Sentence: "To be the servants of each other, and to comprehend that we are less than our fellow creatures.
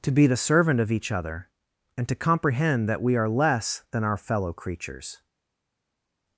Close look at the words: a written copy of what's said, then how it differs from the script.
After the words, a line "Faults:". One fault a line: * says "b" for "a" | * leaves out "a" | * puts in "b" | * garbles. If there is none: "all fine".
"To be the servant of each other, and to comprehend that we are less than our fellow creatures.
Faults:
* says "servant" for "servants"